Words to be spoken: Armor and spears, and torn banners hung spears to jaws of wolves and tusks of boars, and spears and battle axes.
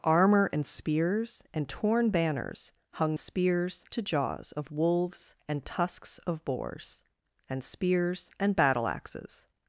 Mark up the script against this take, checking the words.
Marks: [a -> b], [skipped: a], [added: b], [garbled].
Armor and spears, and torn banners hung spears to jaws of wolves and tusks of boars, and spears and battle axes.